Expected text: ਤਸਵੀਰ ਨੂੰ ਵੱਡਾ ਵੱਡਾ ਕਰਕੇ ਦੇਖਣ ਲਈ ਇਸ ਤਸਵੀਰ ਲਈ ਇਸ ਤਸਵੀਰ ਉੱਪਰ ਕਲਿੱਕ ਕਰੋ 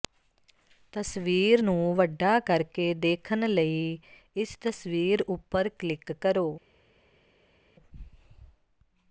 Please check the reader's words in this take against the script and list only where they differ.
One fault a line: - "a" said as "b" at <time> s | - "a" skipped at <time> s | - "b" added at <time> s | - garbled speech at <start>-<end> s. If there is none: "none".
- "ਵੱਡਾ" skipped at 2.4 s
- "ਲਈ ਇਸ ਤਸਵੀਰ" skipped at 5.2 s